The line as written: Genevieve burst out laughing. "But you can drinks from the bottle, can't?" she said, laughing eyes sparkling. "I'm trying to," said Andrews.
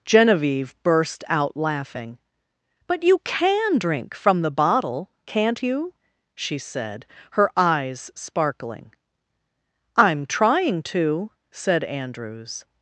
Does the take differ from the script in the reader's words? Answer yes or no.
yes